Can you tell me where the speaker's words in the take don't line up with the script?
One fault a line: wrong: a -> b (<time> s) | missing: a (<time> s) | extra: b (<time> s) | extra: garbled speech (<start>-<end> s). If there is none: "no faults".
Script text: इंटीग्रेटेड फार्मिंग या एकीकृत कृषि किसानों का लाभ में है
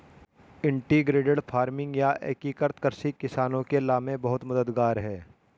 wrong: का -> के (3.7 s)
extra: बहुत मददगार (4.2 s)